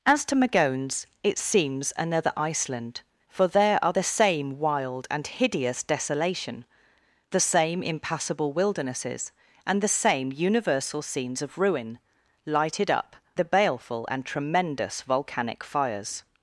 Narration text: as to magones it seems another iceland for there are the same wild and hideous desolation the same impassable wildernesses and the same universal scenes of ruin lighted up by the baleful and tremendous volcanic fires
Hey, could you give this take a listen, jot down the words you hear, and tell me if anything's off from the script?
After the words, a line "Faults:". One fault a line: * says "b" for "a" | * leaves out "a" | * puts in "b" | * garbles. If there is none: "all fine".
as to magones it seems another iceland for there are the same wild and hideous desolation the same impassable wildernesses and the same universal scenes of ruin lighted up the baleful and tremendous volcanic fires
Faults:
* leaves out "by"